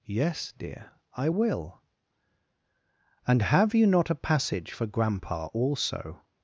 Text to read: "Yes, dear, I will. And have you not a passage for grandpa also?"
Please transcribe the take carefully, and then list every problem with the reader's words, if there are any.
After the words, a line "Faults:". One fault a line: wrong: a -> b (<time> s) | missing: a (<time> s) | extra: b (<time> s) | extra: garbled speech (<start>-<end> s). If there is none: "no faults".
"Yes, dear, I will. And have you not a passage for grandpa also?"
Faults:
no faults